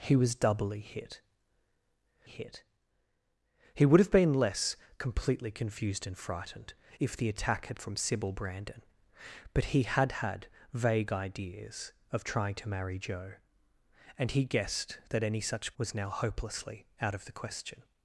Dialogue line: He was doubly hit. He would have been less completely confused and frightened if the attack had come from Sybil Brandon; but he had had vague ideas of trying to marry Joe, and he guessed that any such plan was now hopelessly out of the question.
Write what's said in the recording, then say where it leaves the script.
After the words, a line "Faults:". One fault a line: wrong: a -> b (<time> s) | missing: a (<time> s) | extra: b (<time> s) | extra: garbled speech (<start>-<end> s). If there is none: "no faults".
He was doubly hit hit. He would have been less completely confused and frightened if the attack had from Sybil Brandon; but he had had vague ideas of trying to marry Joe, and he guessed that any such was now hopelessly out of the question.
Faults:
extra: hit (2.2 s)
missing: come (7.8 s)
missing: plan (15.7 s)